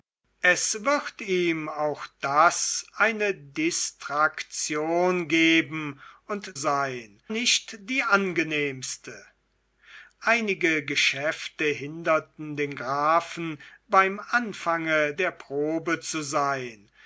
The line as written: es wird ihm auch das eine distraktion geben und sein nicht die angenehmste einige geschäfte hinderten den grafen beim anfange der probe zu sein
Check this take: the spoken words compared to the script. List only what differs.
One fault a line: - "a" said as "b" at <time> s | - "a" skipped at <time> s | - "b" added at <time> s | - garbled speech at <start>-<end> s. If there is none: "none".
none